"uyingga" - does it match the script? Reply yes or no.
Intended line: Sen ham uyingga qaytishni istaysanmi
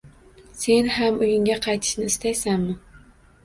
yes